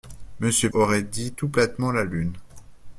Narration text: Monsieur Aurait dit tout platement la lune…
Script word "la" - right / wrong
right